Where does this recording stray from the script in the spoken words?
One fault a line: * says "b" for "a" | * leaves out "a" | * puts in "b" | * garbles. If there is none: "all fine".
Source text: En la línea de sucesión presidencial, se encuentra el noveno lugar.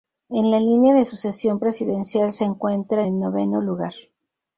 all fine